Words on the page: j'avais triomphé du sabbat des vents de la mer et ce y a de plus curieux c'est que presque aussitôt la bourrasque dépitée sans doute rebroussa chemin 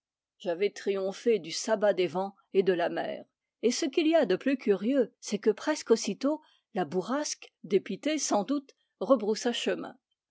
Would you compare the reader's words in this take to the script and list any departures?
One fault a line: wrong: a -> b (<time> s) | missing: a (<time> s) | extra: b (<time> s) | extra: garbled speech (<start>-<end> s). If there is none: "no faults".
extra: et (2.5 s)
extra: qu'il (3.9 s)